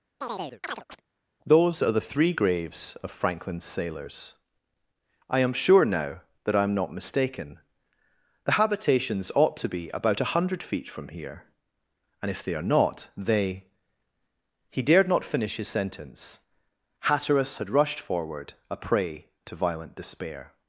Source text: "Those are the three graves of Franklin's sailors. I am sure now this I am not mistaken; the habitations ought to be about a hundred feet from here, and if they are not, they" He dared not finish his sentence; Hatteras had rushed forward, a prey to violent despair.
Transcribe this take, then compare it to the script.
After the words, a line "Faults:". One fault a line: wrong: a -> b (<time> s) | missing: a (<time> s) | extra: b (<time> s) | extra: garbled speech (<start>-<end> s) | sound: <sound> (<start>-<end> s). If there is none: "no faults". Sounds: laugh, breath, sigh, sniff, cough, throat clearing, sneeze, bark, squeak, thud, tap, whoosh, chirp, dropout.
"Those are the three graves of Franklin's sailors. I am sure now that I am not mistaken; the habitations ought to be about a hundred feet from here, and if they are not, they" He dared not finish his sentence; Hatteras had rushed forward, a prey to violent despair.
Faults:
sound: chirp (0.2-1.0 s)
wrong: this -> that (6.4 s)